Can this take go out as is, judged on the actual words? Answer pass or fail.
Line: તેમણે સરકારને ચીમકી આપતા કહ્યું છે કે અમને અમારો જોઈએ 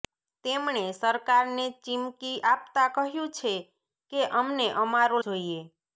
pass